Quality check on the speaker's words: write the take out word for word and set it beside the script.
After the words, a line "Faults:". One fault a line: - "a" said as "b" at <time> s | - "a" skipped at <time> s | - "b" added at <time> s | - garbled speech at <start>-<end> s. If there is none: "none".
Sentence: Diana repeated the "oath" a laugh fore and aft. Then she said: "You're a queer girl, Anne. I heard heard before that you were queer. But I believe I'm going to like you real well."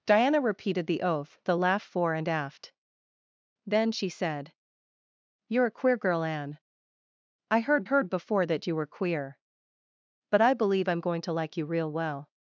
Diana repeated the "oath" a laugh fore and aft. Then she said: "You're a queer girl, Anne. I heard heard before that you were queer. But I believe I'm going to like you real well."
Faults:
none